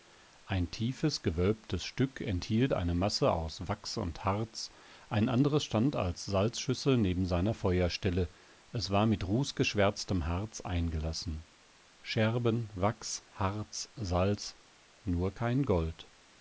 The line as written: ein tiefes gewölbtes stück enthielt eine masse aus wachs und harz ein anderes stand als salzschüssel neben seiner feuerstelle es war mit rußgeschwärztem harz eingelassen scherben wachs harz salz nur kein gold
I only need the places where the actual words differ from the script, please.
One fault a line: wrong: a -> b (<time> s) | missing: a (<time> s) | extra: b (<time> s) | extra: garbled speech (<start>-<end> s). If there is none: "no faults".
no faults